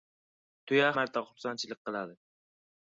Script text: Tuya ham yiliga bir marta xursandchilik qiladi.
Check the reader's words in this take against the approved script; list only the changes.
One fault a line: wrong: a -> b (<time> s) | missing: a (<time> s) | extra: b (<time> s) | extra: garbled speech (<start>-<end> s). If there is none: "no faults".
missing: ham yiliga bir (0.9 s)